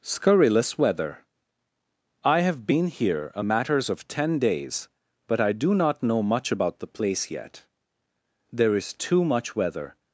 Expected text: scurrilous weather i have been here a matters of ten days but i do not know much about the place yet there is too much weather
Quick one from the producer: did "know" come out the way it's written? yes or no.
yes